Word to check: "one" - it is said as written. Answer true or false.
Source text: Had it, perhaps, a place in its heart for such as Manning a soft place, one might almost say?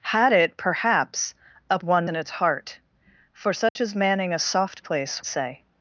false